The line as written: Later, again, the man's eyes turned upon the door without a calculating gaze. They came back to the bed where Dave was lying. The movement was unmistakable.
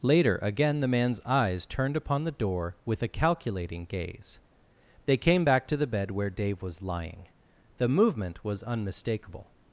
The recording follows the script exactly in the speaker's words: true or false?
false